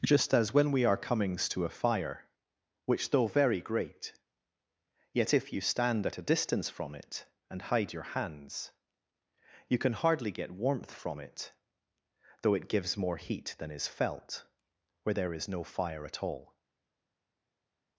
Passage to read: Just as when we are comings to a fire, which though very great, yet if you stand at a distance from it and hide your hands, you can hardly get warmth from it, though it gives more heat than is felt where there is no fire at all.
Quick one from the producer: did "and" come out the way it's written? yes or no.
yes